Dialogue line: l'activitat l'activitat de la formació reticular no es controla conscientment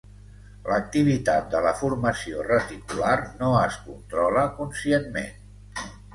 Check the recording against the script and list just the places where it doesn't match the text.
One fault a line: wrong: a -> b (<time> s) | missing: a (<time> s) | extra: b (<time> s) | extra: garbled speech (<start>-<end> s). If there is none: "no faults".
missing: l'activitat (1.5 s)